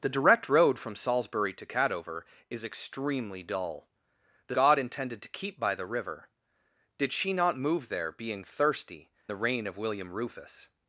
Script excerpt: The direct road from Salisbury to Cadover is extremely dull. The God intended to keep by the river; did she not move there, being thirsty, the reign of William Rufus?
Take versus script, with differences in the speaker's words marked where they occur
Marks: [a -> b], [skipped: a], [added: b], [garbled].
The direct road from Salisbury to Cadover is extremely dull. The God intended to keep by the river; did she not move there, being thirsty, the reign of William Rufus?